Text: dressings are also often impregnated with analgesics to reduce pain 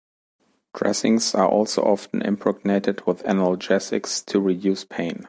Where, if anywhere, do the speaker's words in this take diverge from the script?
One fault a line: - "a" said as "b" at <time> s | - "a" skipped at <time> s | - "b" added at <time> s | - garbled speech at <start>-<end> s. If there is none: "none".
none